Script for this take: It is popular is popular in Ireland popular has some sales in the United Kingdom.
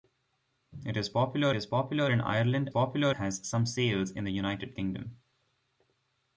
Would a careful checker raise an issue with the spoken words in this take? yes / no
no